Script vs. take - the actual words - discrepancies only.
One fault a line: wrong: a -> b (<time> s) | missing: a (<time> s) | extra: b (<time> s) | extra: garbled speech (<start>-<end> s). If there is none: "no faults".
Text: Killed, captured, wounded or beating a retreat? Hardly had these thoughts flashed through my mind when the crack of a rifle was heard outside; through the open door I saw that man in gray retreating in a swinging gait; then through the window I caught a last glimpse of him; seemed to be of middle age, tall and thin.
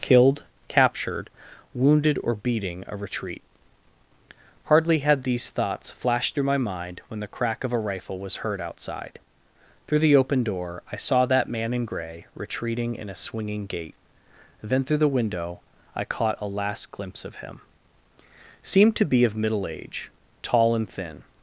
no faults